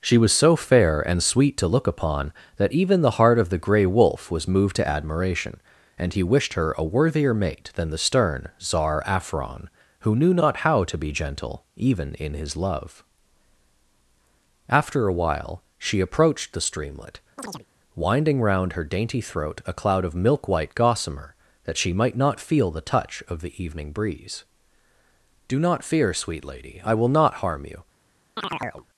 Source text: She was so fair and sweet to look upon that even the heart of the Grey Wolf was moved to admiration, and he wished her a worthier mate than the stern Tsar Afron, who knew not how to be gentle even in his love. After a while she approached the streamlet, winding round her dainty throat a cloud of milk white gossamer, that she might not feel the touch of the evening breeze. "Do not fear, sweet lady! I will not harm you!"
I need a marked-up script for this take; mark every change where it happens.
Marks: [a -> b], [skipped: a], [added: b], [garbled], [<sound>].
She was so fair and sweet to look upon that even the heart of the Grey Wolf was moved to admiration, and he wished her a worthier mate than the stern Tsar Afron, who knew not how to be gentle even in his love. After a while she approached the streamlet, [chirp] winding round her dainty throat a cloud of milk white gossamer, that she might not feel the touch of the evening breeze. "Do not fear, sweet lady! I will not harm you!" [chirp]